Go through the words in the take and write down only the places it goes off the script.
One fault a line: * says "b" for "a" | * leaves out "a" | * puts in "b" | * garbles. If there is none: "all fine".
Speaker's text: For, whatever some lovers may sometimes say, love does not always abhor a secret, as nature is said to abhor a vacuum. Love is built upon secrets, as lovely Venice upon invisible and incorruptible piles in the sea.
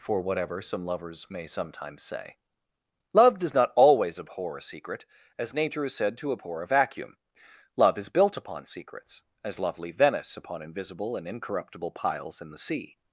all fine